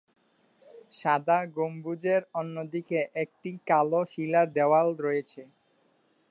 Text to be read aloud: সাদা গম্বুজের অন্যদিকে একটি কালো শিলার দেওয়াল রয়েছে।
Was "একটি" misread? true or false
false